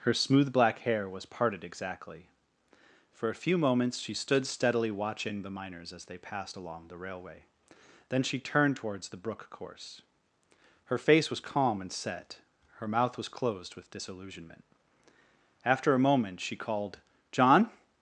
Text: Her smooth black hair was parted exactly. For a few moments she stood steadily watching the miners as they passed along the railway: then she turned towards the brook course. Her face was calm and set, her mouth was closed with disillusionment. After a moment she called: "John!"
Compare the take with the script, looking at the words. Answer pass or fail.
pass